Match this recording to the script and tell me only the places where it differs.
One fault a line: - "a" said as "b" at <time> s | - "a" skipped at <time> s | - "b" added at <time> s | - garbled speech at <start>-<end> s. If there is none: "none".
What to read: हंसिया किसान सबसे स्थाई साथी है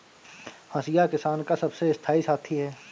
- "का" added at 1.4 s